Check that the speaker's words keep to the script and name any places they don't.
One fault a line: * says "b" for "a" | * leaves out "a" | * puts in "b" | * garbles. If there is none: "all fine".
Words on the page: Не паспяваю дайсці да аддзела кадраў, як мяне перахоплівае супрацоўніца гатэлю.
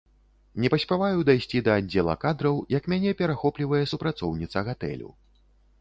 all fine